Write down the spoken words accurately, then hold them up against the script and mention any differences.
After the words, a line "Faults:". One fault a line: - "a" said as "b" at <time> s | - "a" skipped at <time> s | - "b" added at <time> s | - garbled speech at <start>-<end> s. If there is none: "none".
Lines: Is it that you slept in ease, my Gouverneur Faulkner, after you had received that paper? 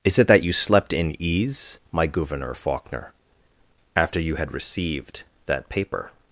Is it that you slept in ease, my Gouverneur Faulkner, after you had received that paper?
Faults:
none